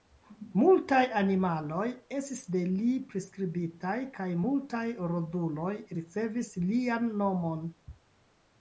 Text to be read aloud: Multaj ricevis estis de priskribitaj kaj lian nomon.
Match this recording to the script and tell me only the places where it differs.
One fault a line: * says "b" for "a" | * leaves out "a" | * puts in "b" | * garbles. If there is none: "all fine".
* says "animaloj" for "ricevis"
* puts in "li"
* puts in "multaj roduloj ricevis"